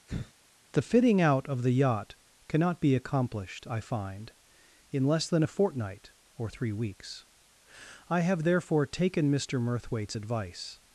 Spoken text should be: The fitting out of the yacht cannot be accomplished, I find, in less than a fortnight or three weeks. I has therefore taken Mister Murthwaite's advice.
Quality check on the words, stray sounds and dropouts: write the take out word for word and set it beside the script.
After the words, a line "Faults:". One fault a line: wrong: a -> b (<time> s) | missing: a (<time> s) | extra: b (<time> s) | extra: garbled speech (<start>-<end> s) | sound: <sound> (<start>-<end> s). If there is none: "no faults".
The fitting out of the yacht cannot be accomplished, I find, in less than a fortnight or three weeks. I have therefore taken Mister Murthwaite's advice.
Faults:
sound: sigh (0.1-0.3 s)
wrong: has -> have (8.2 s)